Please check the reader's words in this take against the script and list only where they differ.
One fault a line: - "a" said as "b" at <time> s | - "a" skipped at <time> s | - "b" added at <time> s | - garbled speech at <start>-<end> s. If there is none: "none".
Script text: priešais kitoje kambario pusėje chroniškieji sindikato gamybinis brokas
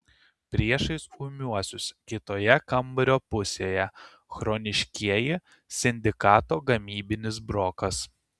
- "ūmiuosius" added at 1.2 s